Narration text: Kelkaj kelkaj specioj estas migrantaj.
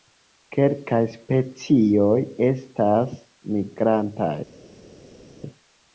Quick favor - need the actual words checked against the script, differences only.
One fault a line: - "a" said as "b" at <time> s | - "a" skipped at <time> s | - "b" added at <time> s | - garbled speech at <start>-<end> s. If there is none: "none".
- "kelkaj" skipped at 1.0 s